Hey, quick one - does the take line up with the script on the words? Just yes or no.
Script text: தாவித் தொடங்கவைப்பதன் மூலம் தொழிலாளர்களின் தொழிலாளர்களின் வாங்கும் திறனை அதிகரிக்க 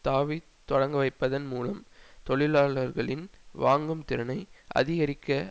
no